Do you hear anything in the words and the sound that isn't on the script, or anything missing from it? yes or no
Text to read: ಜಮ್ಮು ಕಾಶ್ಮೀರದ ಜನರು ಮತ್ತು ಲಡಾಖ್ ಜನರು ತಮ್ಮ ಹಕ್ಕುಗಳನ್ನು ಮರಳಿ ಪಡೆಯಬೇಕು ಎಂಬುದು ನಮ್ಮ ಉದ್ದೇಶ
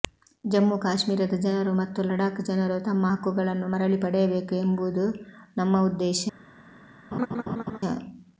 yes